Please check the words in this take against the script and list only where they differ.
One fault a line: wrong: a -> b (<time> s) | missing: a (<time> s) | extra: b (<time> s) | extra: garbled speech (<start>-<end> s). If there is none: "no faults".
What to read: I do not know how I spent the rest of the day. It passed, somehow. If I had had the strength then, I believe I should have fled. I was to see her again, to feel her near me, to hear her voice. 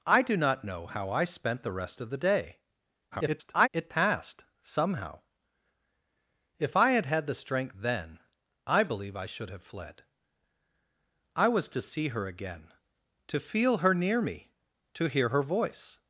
extra: garbled speech (3.1-3.7 s)